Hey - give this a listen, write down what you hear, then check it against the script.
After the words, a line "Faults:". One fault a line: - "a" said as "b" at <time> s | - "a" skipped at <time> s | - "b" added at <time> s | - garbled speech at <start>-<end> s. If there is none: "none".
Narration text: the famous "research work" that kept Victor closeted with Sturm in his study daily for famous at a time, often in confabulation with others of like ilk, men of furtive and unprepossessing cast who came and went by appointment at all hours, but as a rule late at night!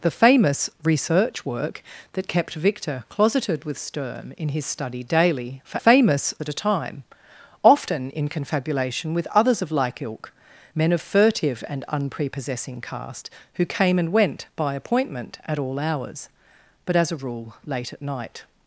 the famous "research work" that kept Victor closeted with Sturm in his study daily for famous at a time, often in confabulation with others of like ilk, men of furtive and unprepossessing cast who came and went by appointment at all hours, but as a rule late at night!
Faults:
none